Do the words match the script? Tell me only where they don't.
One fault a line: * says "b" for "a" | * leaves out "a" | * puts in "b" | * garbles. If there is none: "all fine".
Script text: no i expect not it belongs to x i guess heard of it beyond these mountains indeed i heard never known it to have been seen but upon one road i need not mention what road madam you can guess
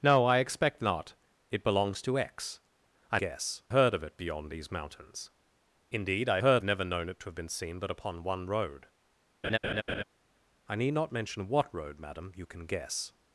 all fine